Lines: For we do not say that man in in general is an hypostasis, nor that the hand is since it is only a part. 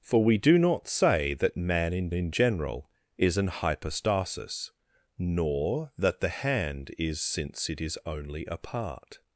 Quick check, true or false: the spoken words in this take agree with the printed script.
true